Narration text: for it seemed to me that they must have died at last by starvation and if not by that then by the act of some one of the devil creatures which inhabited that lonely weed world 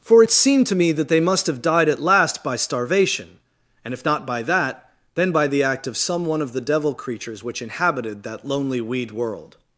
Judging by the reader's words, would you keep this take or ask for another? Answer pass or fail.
pass